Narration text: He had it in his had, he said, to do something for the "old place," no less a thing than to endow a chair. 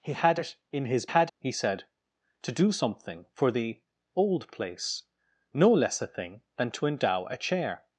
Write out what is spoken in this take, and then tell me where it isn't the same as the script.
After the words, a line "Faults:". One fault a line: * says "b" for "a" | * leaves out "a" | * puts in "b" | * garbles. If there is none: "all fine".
He had it in his had, he said, to do something for the "old place," no less a thing than to endow a chair.
Faults:
all fine